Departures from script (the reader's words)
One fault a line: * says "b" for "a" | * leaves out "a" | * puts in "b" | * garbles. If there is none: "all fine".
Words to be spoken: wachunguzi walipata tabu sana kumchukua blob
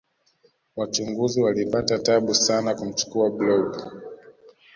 all fine